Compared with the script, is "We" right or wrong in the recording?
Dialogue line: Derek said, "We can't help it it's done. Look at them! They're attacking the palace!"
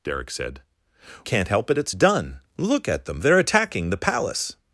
wrong